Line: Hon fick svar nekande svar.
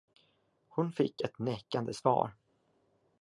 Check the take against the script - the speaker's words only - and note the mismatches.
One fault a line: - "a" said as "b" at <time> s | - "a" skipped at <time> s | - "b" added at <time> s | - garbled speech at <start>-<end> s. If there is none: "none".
- "svar" said as "ett" at 1.2 s